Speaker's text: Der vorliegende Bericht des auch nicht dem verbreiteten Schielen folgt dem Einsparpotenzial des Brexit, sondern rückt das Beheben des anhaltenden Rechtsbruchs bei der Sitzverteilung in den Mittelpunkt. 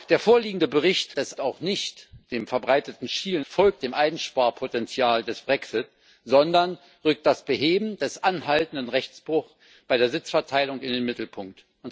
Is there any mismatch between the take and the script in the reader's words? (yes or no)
no